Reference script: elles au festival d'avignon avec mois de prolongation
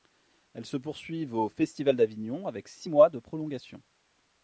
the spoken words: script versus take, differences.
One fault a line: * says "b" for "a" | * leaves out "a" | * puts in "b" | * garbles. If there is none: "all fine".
* puts in "se poursuivent"
* puts in "six"